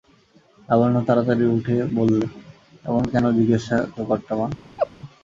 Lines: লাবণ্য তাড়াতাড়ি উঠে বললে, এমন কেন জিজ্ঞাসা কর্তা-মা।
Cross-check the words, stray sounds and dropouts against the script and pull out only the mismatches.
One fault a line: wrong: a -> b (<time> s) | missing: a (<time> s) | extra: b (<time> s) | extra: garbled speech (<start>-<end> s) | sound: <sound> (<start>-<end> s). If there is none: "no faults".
sound: laugh (4.8-4.9 s)